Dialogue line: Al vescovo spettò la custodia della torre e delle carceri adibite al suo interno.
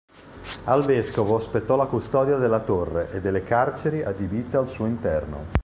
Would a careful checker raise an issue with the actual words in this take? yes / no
no